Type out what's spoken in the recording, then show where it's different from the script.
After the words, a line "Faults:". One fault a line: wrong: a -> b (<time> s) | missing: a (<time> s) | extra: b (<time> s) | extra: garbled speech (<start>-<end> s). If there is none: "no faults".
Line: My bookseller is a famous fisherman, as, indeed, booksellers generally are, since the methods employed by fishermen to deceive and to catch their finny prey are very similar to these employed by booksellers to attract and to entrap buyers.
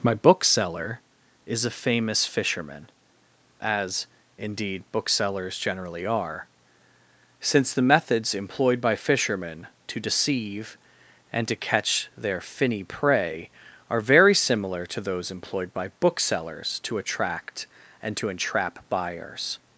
My bookseller is a famous fisherman, as, indeed, booksellers generally are, since the methods employed by fishermen to deceive and to catch their finny prey are very similar to those employed by booksellers to attract and to entrap buyers.
Faults:
wrong: these -> those (15.0 s)